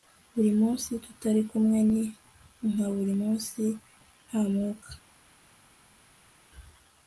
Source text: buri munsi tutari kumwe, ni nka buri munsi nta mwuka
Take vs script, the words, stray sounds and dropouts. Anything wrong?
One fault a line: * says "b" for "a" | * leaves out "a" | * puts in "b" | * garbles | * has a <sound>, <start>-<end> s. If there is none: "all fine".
all fine